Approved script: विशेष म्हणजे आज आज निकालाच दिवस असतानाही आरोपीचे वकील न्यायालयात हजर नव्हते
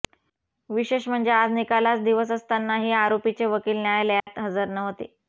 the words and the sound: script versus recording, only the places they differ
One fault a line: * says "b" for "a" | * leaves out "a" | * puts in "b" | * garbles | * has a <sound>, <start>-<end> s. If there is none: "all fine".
* leaves out "आज"
* has a dropout, 4.2-4.3 s